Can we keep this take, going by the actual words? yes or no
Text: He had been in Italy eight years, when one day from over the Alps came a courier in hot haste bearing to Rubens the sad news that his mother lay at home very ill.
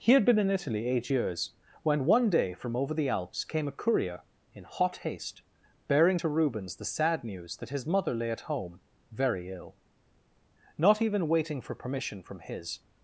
no